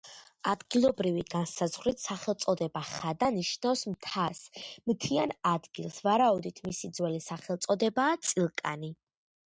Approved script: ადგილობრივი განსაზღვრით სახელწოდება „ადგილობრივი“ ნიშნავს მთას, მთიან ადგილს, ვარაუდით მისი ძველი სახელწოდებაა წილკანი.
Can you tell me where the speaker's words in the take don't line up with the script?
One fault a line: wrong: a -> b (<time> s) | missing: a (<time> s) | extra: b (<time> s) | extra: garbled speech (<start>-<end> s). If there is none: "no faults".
wrong: ადგილობრივი -> ხადა (2.9 s)